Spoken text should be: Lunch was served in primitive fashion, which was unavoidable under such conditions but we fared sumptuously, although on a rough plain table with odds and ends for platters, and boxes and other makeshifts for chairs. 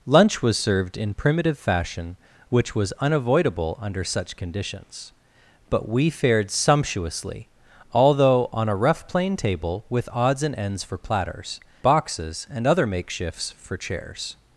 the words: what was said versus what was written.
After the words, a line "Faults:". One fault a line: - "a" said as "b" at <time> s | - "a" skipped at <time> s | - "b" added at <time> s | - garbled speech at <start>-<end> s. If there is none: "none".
Lunch was served in primitive fashion, which was unavoidable under such conditions but we fared sumptuously, although on a rough plain table with odds and ends for platters, boxes and other makeshifts for chairs.
Faults:
- "and" skipped at 11.6 s